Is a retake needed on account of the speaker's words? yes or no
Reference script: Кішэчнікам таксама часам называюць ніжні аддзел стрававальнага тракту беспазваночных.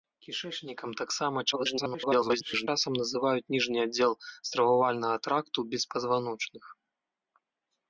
yes